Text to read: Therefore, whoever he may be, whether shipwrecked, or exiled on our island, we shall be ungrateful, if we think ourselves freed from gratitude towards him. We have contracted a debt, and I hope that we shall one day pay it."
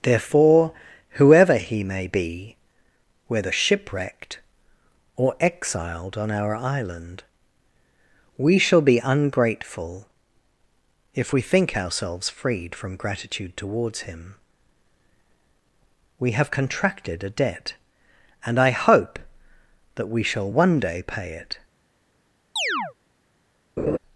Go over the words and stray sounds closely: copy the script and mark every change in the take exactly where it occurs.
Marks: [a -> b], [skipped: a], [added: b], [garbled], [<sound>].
Therefore, whoever he may be, whether shipwrecked, or exiled on our island, we shall be ungrateful, if we think ourselves freed from gratitude towards him. We have contracted a debt, and I hope that we shall one day pay it." [chirp] [laugh]